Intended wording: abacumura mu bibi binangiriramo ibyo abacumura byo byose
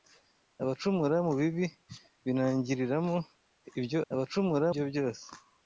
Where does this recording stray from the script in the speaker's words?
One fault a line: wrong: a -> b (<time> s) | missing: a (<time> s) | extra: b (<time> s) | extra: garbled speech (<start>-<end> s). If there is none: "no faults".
no faults